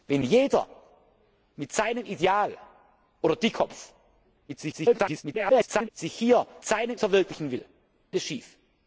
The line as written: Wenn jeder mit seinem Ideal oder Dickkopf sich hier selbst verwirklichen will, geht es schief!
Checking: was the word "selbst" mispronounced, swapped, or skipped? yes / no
yes